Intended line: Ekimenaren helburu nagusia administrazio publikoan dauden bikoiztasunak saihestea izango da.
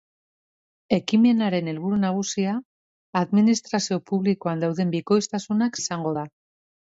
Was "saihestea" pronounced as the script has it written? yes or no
no